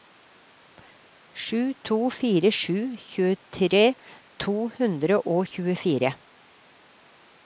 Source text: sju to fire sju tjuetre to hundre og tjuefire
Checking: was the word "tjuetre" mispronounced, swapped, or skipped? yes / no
no